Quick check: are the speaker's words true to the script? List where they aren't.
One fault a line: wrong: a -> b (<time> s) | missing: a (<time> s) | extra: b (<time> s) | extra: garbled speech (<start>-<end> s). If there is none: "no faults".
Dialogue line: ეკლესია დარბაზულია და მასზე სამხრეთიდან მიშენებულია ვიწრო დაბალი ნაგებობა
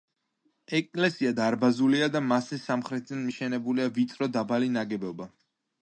no faults